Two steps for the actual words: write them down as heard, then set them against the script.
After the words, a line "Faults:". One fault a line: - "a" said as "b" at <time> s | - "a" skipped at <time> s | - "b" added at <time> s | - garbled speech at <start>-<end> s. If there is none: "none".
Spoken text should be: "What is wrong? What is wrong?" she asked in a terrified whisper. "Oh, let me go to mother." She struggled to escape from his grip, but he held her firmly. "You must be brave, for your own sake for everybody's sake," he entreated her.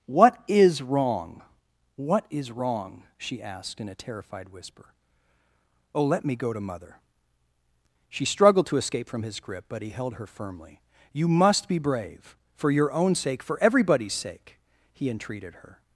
"What is wrong? What is wrong?" she asked in a terrified whisper. "Oh, let me go to mother." She struggled to escape from his grip, but he held her firmly. "You must be brave, for your own sake for everybody's sake," he entreated her.
Faults:
none